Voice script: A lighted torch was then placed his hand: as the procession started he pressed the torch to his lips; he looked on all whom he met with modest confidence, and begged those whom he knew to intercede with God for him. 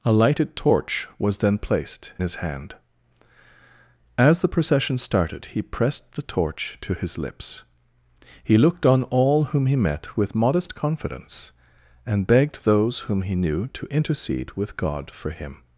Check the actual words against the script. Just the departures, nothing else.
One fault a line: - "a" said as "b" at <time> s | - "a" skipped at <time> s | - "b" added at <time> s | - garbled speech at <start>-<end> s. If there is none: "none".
none